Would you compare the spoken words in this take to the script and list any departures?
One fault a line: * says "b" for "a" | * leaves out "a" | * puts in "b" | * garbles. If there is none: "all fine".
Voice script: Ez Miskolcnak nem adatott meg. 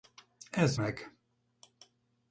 * leaves out "Miskolcnak nem adatott"